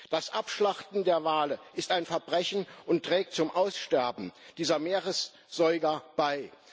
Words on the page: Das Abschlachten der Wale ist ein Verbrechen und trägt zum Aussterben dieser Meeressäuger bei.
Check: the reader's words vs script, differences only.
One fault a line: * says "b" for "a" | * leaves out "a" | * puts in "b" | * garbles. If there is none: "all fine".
all fine